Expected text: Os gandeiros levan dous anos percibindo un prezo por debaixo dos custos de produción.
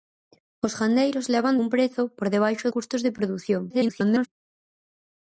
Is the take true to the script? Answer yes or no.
no